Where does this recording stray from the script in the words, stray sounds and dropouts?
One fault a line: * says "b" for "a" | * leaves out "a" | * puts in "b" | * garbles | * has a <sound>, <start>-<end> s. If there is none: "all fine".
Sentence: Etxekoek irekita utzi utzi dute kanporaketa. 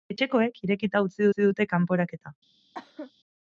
* has a cough, 2.7-3.1 s